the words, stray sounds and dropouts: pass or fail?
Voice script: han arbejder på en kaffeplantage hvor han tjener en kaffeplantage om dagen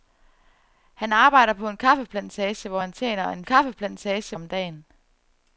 pass